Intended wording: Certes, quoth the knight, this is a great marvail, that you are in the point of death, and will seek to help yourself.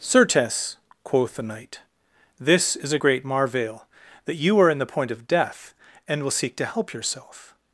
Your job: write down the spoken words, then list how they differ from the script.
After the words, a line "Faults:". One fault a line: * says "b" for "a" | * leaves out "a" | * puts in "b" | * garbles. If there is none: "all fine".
Certes, quoth the knight, this is a great marvail, that you are in the point of death, and will seek to help yourself.
Faults:
all fine